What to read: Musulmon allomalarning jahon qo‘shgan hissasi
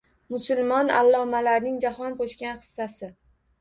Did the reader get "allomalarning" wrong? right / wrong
right